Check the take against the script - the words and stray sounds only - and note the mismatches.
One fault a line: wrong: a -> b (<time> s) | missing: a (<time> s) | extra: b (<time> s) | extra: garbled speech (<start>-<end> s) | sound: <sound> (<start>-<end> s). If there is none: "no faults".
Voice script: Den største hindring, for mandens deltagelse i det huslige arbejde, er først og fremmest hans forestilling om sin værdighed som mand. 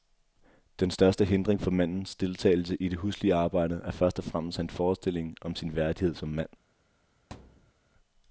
sound: thud (7.3-7.7 s)